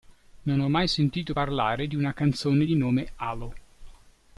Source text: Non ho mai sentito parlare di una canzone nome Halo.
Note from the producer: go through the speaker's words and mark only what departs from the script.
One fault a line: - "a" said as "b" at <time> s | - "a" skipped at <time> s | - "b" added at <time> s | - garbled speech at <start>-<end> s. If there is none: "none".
- "di" added at 2.6 s